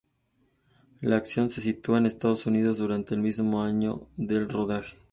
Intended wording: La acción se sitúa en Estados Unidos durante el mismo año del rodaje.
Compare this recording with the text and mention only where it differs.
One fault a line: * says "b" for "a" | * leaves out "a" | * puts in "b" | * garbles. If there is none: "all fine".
all fine